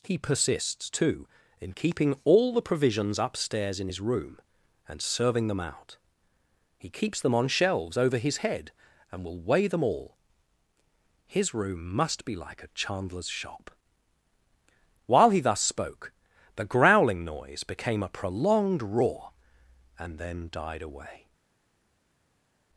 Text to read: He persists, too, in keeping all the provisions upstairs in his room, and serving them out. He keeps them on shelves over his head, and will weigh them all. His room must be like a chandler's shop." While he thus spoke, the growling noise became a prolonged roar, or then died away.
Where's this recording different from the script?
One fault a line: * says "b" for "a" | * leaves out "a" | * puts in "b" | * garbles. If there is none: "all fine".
* says "and" for "or"